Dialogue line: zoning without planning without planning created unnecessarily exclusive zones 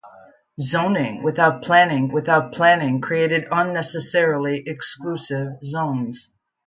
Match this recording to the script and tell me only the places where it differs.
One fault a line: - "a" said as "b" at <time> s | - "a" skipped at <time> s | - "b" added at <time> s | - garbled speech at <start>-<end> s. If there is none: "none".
none